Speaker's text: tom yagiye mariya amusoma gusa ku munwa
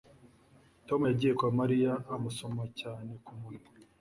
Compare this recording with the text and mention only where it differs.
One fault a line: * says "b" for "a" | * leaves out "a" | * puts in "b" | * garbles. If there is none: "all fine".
* puts in "kwa"
* says "cyane" for "gusa"